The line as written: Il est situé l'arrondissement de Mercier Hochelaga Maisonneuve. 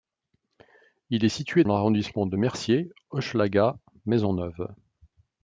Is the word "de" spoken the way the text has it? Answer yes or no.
yes